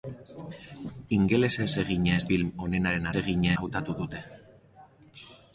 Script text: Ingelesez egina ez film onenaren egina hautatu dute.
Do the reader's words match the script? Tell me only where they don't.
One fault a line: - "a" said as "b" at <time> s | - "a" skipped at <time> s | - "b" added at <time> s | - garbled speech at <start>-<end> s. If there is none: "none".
none